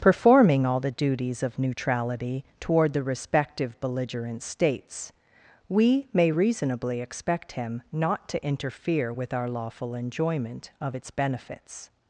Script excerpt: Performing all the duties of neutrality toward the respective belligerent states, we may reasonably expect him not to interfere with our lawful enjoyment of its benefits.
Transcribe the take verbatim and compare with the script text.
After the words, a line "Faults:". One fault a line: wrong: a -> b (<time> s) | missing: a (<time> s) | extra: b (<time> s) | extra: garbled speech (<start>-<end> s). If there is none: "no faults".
Performing all the duties of neutrality toward the respective belligerent states, we may reasonably expect him not to interfere with our lawful enjoyment of its benefits.
Faults:
no faults